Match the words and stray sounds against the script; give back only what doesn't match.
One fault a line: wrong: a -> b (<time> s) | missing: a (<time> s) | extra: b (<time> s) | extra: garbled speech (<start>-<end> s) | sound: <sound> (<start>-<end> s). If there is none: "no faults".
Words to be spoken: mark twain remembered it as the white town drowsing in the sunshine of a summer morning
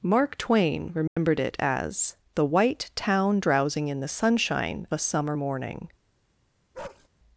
sound: dropout (1.1-1.2 s)
missing: of (4.9 s)
sound: bark (6.7-7.1 s)